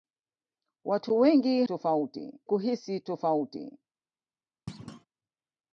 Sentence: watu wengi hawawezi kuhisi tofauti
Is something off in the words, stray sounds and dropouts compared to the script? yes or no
yes